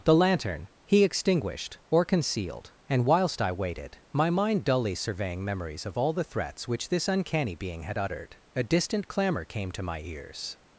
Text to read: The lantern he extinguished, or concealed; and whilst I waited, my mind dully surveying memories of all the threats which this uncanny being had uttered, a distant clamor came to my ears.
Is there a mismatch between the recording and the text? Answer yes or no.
no